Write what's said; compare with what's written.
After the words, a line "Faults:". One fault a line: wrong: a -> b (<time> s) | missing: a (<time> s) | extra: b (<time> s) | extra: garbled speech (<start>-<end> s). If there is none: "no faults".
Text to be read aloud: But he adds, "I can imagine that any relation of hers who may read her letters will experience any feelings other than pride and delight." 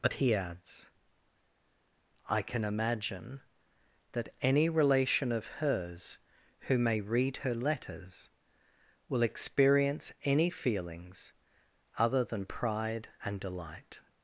But he adds, "I can imagine that any relation of hers who may read her letters will experience any feelings other than pride and delight."
Faults:
no faults